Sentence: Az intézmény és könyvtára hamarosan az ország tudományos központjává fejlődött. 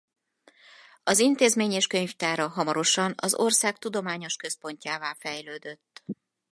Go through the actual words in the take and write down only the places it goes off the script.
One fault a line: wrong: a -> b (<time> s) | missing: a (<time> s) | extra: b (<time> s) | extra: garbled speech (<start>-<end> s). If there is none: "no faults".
no faults